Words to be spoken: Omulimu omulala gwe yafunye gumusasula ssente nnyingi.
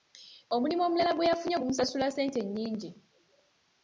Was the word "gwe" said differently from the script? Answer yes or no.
no